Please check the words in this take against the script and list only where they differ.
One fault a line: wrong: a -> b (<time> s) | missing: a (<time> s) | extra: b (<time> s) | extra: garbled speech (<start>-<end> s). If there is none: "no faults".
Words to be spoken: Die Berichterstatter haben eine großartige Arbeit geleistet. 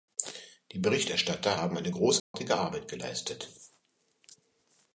no faults